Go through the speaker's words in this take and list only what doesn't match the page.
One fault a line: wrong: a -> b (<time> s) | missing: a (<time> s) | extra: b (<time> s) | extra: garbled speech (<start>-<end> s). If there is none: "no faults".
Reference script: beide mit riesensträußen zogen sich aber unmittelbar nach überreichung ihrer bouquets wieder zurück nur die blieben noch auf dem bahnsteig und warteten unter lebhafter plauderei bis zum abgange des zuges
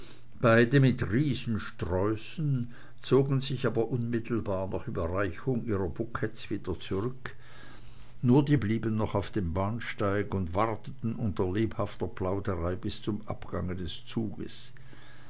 no faults